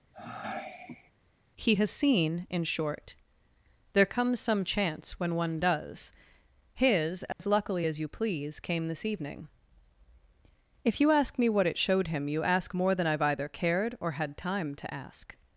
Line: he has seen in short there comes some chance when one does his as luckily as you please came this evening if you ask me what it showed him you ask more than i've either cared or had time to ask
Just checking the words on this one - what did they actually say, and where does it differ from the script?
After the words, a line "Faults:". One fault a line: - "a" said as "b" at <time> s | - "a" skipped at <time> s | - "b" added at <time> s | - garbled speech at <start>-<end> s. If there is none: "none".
he has seen in short there comes some chance when one does his as luckily as you please came this evening if you ask me what it showed him you ask more than i've either cared or had time to ask
Faults:
none